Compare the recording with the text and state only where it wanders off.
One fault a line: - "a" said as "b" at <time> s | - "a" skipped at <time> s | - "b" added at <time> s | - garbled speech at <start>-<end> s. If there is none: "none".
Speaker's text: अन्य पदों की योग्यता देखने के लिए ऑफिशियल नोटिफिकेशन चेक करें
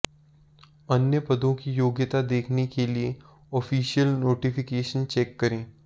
none